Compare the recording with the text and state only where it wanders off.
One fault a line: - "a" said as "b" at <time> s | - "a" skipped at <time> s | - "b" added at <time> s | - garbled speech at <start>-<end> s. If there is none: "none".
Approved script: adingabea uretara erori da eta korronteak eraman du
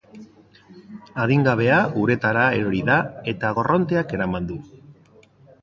none